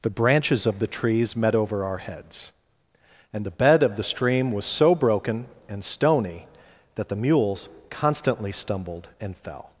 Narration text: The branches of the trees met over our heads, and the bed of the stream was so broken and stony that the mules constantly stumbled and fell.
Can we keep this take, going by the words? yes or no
yes